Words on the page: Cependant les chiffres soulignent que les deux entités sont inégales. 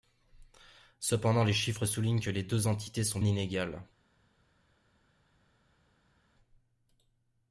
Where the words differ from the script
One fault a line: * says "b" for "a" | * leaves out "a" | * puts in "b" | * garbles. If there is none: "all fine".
all fine